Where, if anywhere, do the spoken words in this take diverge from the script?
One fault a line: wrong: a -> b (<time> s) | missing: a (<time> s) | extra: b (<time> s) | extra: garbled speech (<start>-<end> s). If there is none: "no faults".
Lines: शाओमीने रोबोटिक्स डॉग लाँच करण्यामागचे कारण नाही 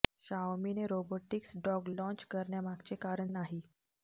no faults